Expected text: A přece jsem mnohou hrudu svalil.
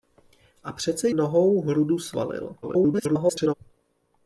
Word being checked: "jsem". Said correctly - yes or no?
no